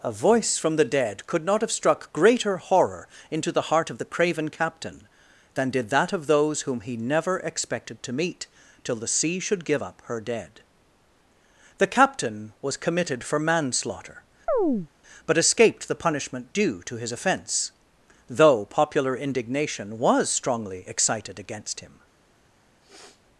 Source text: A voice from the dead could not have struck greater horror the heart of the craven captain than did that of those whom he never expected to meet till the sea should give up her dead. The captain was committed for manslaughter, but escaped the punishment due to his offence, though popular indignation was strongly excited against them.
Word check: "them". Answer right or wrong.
wrong